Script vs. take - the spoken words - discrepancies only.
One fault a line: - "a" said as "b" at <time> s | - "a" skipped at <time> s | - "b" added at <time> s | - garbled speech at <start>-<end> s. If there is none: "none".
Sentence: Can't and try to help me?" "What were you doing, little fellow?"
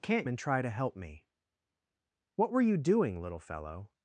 none